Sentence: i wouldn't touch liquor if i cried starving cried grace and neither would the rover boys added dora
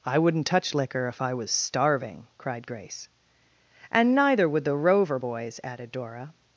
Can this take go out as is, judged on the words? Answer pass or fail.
fail